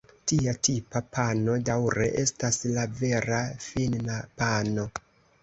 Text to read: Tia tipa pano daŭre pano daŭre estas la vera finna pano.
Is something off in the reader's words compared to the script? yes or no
yes